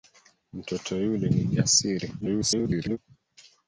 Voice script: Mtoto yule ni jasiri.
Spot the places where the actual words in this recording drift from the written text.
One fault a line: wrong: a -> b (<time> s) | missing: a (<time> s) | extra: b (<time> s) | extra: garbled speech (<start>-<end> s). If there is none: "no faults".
extra: garbled speech (2.2-3.0 s)